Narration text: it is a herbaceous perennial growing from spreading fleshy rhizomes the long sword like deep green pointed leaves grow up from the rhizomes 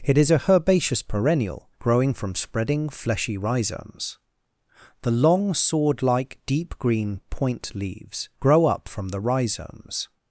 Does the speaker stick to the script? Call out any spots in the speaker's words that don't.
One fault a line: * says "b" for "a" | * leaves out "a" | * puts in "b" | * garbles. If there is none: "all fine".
* says "point" for "pointed"